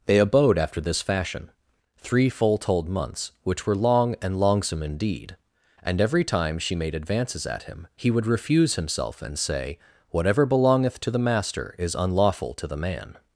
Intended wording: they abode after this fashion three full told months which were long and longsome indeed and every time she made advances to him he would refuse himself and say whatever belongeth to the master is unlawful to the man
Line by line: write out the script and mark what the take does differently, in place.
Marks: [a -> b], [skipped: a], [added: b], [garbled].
they abode after this fashion three full told months which were long and longsome indeed and every time she made advances [to -> at] him he would refuse himself and say whatever belongeth to the master is unlawful to the man